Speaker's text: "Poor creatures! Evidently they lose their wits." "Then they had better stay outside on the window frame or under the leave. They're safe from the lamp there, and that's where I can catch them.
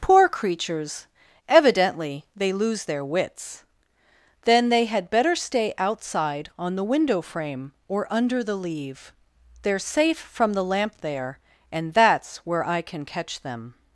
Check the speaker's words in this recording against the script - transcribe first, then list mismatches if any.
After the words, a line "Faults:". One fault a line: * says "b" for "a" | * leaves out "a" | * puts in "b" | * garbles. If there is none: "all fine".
"Poor creatures! Evidently they lose their wits." "Then they had better stay outside on the window frame or under the leave. They're safe from the lamp there, and that's where I can catch them.
Faults:
all fine